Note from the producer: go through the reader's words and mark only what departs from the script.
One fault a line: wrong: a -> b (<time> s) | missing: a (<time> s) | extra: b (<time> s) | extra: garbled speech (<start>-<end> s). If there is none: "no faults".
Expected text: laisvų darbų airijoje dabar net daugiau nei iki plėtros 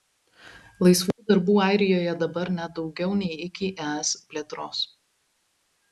extra: es (3.9 s)